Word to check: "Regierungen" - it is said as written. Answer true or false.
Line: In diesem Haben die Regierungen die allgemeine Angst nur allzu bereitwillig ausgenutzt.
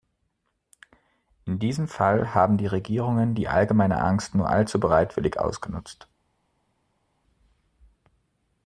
true